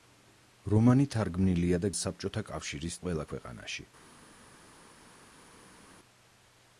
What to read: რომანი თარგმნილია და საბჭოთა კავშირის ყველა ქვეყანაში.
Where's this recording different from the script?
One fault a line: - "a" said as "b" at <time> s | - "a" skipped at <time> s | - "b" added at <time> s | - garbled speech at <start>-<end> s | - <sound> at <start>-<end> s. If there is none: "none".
none